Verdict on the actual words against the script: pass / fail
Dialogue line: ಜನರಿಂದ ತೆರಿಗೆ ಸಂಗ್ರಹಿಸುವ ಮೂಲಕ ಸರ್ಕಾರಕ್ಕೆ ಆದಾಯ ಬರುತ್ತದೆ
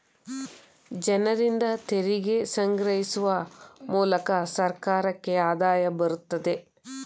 pass